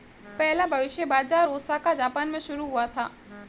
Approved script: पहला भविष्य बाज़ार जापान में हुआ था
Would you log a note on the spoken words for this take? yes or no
yes